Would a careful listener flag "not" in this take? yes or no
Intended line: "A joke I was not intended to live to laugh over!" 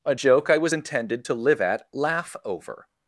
yes